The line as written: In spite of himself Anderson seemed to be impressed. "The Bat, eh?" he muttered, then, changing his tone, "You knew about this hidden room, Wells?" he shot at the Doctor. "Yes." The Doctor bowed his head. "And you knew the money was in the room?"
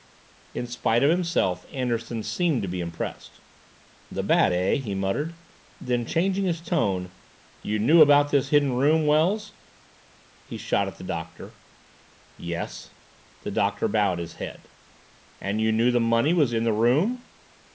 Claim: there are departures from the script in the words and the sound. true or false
false